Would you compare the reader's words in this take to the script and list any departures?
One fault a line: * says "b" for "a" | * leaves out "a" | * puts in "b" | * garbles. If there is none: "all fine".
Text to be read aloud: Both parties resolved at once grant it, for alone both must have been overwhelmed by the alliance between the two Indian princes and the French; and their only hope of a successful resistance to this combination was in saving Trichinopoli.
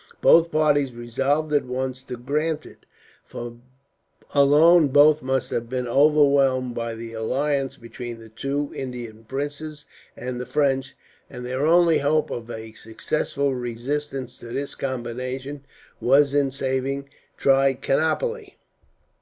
* puts in "to"